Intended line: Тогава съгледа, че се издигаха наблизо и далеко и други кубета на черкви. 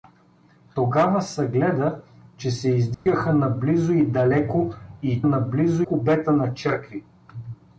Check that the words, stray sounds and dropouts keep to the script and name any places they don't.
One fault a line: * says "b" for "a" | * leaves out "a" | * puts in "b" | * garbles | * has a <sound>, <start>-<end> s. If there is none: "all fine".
* has a dropout, 2.9-3.1 s
* says "наблизо" for "други"